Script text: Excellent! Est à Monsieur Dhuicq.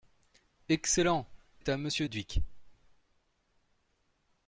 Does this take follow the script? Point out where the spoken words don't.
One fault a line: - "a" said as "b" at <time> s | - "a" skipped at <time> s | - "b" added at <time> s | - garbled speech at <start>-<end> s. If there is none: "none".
none